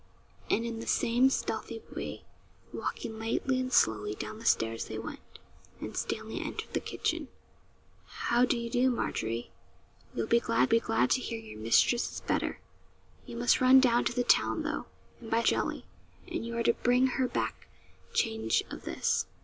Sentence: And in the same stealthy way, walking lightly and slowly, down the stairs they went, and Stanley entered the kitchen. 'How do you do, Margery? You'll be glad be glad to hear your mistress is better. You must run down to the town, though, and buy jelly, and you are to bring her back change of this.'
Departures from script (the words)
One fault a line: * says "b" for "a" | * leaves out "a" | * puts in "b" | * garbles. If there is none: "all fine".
all fine